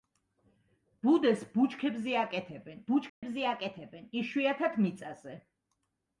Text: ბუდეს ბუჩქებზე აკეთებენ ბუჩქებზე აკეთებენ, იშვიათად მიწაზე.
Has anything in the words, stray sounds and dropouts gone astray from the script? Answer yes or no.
yes